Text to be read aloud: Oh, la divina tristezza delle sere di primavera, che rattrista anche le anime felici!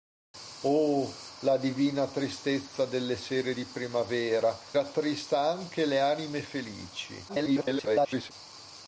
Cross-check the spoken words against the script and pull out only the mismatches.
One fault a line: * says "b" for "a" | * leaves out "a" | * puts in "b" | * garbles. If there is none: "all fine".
* leaves out "che"
* garbles